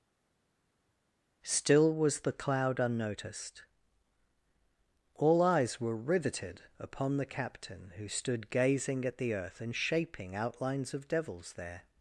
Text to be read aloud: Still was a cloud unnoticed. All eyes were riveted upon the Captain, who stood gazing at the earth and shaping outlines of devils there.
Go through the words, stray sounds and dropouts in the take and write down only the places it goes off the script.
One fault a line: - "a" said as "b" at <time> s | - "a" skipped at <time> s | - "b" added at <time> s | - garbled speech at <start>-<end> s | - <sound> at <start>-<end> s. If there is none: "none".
- "a" said as "the" at 2.2 s